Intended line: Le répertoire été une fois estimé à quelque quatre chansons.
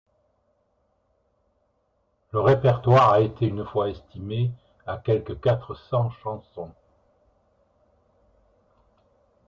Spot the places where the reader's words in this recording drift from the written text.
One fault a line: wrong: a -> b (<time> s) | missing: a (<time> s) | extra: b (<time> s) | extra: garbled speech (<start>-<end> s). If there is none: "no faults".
extra: a (3.1 s)
extra: cents (5.7 s)